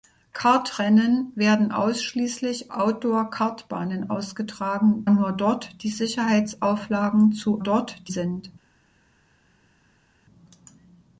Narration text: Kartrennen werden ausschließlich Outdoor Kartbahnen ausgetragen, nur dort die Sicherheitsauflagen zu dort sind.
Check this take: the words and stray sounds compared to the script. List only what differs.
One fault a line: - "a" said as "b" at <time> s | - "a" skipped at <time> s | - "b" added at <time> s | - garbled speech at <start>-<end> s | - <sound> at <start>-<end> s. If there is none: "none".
none